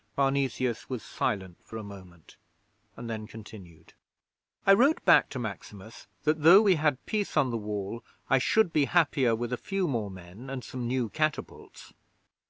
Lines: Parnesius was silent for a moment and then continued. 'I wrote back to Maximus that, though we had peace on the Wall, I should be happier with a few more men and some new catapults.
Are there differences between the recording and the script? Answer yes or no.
no